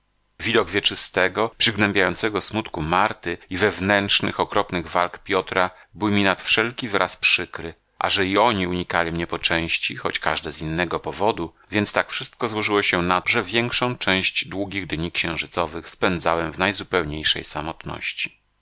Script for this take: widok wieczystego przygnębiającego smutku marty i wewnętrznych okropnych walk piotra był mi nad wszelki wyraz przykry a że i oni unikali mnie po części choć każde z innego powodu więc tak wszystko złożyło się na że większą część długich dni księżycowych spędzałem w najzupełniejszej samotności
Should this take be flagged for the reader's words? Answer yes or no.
no